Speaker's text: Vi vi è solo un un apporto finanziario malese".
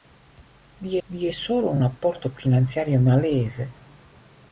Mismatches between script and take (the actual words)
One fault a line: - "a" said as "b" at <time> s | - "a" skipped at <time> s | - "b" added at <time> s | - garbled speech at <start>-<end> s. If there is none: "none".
none